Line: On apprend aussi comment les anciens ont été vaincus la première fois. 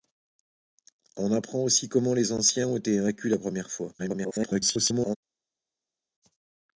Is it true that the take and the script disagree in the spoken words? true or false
true